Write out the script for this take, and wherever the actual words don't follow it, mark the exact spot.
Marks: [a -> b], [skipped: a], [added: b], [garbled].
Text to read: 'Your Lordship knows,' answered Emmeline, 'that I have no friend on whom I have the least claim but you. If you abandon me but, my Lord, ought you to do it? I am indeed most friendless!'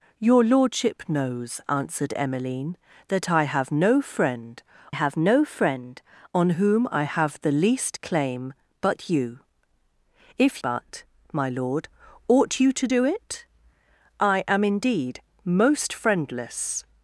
'Your Lordship knows,' answered Emmeline, 'that I have no friend [added: have no friend] on whom I have the least claim but you. If [skipped: you abandon me] but, my Lord, ought you to do it? I am indeed most friendless!'